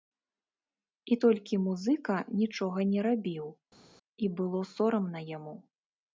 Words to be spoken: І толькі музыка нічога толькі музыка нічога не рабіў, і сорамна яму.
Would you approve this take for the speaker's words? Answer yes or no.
no